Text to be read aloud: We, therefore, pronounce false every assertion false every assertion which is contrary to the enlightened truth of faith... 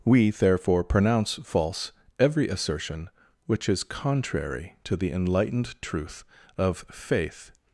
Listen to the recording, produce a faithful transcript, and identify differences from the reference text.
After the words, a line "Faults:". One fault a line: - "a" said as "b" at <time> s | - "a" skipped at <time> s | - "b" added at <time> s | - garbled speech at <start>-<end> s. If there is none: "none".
We, therefore, pronounce false every assertion which is contrary to the enlightened truth of faith...
Faults:
- "false every assertion" skipped at 3.1 s